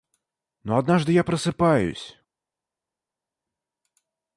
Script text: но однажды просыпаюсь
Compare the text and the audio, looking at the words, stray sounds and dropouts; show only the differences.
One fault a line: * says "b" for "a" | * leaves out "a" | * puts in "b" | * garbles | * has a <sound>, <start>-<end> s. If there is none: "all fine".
* puts in "я"